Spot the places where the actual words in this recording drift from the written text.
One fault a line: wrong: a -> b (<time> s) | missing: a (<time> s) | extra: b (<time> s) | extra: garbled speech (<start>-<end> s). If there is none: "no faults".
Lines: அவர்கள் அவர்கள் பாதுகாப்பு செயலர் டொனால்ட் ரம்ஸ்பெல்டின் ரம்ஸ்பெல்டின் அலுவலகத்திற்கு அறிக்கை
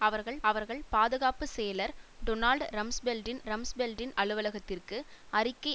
no faults